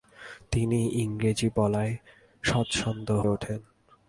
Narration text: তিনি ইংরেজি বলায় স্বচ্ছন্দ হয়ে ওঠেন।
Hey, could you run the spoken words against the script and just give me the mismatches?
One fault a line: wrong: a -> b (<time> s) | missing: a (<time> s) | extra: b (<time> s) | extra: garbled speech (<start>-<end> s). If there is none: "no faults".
missing: হয়ে (3.1 s)